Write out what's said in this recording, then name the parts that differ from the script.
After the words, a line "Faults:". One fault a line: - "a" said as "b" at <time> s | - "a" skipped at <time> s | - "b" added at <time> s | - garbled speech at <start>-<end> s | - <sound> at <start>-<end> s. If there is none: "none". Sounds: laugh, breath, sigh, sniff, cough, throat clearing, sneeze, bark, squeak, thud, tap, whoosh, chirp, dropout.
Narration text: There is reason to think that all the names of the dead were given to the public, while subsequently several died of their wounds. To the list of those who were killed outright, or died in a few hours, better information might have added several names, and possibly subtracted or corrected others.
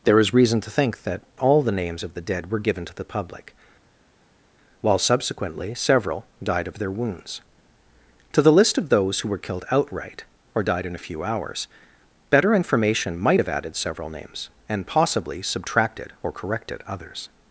There is reason to think that all the names of the dead were given to the public, while subsequently several died of their wounds. To the list of those who were killed outright, or died in a few hours, better information might have added several names, and possibly subtracted or corrected others.
Faults:
none